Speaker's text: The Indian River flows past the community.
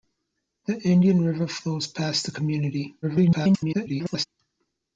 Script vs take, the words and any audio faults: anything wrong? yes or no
yes